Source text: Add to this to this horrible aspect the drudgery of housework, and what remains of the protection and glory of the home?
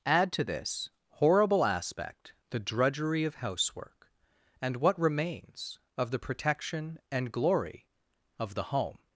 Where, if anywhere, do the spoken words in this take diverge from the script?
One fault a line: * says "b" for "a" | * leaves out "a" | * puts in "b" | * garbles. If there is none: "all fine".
* leaves out "to this"